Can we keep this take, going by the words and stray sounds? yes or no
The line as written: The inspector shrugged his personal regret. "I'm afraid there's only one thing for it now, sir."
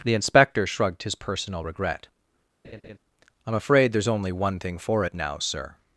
no